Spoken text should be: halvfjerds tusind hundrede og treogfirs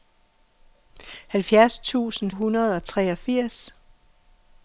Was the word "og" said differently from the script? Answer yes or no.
no